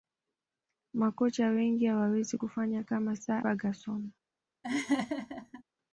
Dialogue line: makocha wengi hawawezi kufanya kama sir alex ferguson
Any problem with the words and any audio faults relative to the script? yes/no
yes